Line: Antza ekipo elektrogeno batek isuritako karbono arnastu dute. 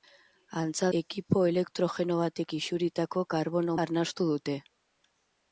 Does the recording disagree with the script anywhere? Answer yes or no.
no